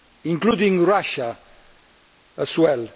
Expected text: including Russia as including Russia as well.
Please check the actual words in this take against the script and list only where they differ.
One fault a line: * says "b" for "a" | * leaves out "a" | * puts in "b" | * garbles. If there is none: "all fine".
* leaves out "including Russia as"